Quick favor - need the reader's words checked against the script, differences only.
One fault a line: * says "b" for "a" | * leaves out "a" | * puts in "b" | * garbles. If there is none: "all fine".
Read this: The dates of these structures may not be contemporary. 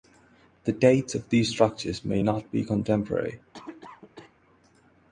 all fine